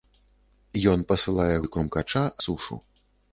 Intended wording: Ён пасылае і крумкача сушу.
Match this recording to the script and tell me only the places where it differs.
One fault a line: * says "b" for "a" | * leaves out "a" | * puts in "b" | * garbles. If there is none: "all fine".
all fine